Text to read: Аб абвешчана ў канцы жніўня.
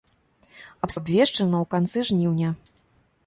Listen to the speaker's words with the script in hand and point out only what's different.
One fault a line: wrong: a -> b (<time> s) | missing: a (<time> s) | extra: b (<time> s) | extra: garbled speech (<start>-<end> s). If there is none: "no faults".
no faults